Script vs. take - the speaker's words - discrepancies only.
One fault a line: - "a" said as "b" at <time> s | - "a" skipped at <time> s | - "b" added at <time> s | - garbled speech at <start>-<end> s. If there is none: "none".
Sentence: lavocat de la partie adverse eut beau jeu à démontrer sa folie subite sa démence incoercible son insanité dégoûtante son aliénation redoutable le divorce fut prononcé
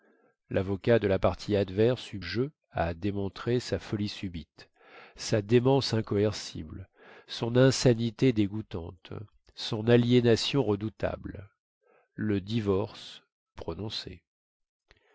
- "beau" skipped at 2.2 s
- "fut" skipped at 13.2 s